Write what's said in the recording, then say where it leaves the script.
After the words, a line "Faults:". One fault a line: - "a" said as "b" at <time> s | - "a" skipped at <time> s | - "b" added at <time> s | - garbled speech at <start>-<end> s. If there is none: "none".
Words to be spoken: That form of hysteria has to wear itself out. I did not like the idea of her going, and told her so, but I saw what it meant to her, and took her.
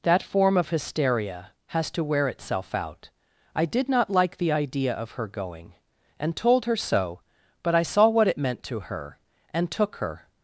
That form of hysteria has to wear itself out. I did not like the idea of her going, and told her so, but I saw what it meant to her, and took her.
Faults:
none